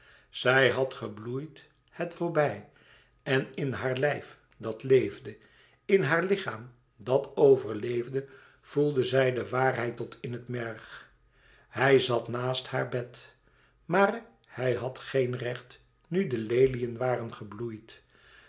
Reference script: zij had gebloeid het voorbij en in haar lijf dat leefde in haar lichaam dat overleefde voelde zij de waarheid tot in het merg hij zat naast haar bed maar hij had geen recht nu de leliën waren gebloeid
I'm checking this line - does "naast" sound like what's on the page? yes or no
yes